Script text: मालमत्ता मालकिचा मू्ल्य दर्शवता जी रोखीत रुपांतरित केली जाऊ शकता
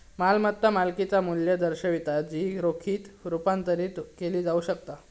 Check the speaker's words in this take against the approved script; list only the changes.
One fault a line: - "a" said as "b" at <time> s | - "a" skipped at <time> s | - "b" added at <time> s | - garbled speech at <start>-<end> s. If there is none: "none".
none